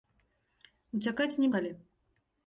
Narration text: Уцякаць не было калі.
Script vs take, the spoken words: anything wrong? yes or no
yes